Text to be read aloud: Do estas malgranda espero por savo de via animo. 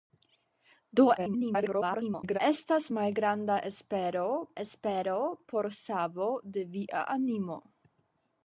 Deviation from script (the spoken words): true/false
true